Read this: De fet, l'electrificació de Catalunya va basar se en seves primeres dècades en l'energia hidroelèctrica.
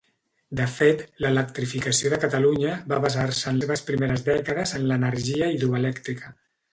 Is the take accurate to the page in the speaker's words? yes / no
yes